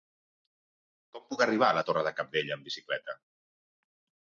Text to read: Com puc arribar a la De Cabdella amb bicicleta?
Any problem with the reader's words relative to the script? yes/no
yes